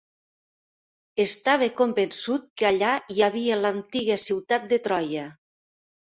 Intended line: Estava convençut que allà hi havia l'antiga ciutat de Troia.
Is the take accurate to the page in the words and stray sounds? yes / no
yes